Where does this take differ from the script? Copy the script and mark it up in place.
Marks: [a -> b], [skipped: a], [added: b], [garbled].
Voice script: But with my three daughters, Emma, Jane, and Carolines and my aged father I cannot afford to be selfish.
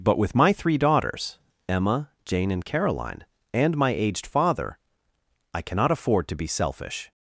But with my three daughters, Emma, Jane, and [Carolines -> Caroline] and my aged father I cannot afford to be selfish.